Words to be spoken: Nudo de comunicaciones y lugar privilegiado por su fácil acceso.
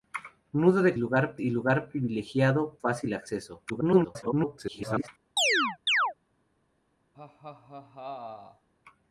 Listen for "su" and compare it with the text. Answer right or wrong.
wrong